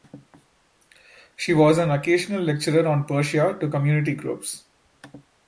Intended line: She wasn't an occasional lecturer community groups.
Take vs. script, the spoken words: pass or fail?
fail